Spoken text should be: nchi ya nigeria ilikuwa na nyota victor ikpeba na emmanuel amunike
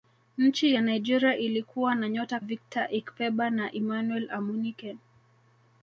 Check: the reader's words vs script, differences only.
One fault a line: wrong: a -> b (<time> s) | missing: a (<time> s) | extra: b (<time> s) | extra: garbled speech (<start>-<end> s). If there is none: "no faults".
no faults